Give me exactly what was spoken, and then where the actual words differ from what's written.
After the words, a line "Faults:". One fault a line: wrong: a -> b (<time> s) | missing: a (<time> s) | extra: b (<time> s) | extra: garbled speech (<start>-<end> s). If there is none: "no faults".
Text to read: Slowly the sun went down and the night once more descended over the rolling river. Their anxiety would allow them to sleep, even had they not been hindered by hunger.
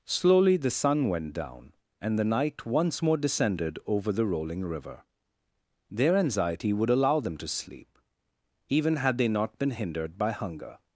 Slowly the sun went down and the night once more descended over the rolling river. Their anxiety would allow them to sleep, even had they not been hindered by hunger.
Faults:
no faults